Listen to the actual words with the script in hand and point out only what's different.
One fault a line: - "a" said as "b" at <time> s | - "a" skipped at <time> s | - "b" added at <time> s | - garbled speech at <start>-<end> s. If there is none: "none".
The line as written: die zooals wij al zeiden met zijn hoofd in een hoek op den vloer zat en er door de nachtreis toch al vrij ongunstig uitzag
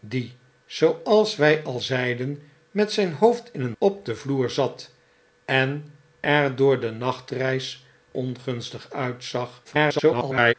- "hoek" skipped at 3.7 s
- "toch al vrij" skipped at 7.8 s
- garbled speech at 9.6-10.5 s